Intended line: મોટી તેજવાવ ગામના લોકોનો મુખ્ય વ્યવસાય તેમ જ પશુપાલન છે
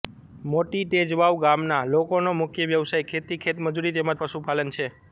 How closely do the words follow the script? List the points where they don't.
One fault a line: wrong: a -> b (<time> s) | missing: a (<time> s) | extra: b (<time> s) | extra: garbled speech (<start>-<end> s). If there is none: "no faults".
extra: ખેતી ખેતમજૂરી (3.1 s)